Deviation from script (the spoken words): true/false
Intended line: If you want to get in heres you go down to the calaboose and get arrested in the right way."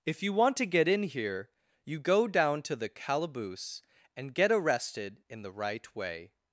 true